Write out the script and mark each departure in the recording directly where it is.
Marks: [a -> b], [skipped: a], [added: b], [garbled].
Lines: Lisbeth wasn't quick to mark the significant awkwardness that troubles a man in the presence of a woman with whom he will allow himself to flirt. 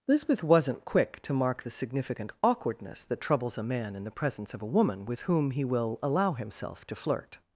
Lisbeth wasn't quick to mark the significant awkwardness that troubles a man in the presence of a woman with whom he will allow himself to flirt.